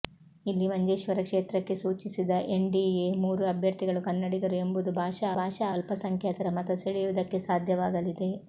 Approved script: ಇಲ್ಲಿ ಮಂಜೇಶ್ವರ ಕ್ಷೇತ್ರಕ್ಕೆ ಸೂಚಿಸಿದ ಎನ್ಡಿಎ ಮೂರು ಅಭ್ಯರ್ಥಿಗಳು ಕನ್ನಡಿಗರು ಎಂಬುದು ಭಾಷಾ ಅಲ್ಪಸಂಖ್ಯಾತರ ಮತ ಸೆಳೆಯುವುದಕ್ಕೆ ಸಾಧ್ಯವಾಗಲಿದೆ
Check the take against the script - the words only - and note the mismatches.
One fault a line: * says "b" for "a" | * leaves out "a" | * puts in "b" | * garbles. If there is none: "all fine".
* puts in "ಭಾಷಾ"